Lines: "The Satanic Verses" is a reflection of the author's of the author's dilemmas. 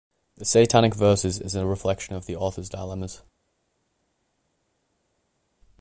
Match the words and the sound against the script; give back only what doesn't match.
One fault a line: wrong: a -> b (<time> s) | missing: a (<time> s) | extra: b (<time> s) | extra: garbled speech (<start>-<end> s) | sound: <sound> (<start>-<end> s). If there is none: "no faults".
missing: of the author's (2.7 s)